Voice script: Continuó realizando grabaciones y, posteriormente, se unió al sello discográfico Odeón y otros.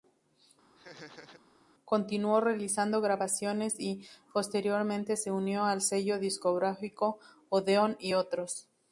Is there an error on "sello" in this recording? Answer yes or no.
no